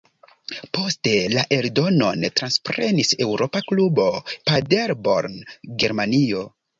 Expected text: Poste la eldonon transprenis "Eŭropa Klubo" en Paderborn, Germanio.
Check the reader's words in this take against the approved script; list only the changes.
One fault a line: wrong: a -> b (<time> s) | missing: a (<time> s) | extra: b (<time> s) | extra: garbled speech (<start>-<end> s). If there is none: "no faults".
missing: en (4.1 s)